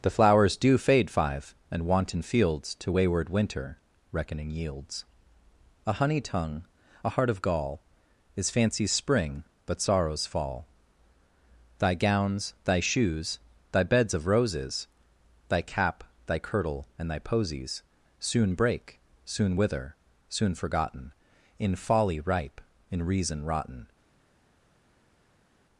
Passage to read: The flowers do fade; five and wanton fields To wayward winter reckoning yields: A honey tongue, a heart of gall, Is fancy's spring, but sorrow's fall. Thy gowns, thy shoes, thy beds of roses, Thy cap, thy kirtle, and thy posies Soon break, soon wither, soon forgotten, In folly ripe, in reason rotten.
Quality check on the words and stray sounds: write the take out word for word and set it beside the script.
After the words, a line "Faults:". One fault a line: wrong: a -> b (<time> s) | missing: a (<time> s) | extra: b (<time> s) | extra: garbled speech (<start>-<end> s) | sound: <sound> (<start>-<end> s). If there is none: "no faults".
The flowers do fade; five and wanton fields To wayward winter reckoning yields: A honey tongue, a heart of gall, Is fancy's spring, but sorrow's fall. Thy gowns, thy shoes, thy beds of roses, Thy cap, thy kirtle, and thy posies Soon break, soon wither, soon forgotten, In folly ripe, in reason rotten.
Faults:
no faults